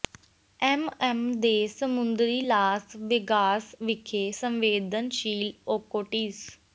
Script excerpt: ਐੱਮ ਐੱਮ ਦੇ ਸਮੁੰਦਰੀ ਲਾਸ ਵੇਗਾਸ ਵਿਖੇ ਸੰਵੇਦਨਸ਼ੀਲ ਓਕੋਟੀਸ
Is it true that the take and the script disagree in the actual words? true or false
false